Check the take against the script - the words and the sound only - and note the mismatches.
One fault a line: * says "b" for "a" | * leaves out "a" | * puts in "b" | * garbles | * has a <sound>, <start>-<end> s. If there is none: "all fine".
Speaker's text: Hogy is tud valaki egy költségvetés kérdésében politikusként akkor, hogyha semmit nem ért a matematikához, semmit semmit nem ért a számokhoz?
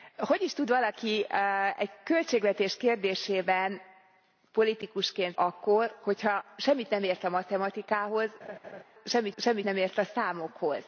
* has a laugh, 8.4-8.8 s